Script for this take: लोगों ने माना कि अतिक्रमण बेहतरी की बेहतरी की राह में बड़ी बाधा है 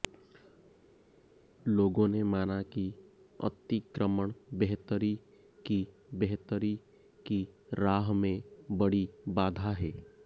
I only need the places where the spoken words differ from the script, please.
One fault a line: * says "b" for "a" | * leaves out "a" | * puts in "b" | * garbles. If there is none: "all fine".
all fine